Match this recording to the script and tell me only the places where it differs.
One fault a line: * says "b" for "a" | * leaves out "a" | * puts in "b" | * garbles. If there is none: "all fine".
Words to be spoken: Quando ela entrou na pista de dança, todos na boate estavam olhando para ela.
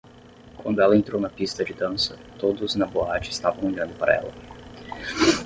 all fine